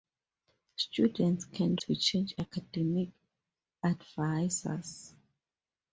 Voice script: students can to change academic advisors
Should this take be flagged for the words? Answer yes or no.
no